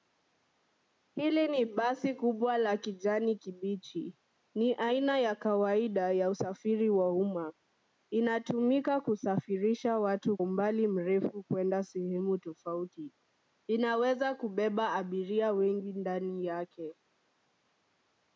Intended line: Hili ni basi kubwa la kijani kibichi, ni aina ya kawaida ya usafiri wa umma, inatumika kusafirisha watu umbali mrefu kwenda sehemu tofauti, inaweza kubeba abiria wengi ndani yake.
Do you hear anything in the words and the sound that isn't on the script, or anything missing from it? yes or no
no